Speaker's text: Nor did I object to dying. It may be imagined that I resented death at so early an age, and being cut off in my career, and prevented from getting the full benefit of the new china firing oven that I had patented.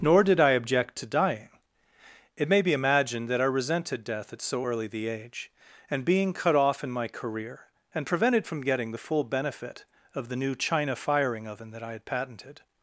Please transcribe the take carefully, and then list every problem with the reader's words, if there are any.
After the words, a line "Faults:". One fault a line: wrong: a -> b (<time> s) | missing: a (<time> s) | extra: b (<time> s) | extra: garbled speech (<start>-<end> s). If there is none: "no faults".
Nor did I object to dying. It may be imagined that I resented death at so early the age, and being cut off in my career, and prevented from getting the full benefit of the new china firing oven that I had patented.
Faults:
wrong: an -> the (4.9 s)